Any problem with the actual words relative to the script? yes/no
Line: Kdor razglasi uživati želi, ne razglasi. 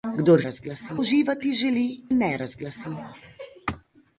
no